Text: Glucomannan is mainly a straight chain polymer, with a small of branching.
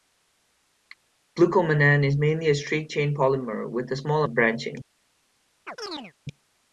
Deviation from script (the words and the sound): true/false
true